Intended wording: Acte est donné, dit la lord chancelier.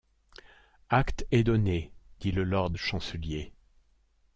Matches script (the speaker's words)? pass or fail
fail